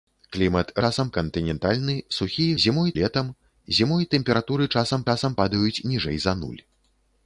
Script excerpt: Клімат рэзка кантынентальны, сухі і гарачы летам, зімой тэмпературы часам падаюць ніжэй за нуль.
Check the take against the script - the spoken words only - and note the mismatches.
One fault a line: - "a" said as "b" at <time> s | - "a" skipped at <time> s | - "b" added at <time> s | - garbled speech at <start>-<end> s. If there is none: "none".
- "рэзка" said as "часам" at 0.9 s
- "гарачы" said as "зімой" at 2.7 s
- "часам" added at 5.1 s